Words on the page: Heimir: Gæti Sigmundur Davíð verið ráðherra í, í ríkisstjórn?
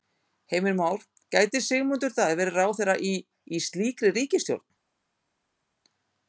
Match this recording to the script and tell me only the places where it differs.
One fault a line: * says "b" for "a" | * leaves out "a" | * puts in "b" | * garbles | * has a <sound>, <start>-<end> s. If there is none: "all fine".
* puts in "Már"
* puts in "slíkri"